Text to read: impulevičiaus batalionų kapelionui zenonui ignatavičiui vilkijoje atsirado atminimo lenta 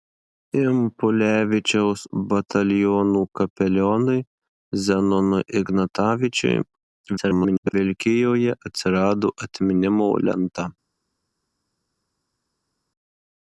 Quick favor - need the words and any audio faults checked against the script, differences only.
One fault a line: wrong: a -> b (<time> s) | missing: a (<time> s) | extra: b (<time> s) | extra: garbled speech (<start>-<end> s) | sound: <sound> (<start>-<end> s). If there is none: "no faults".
extra: garbled speech (7.2-7.7 s)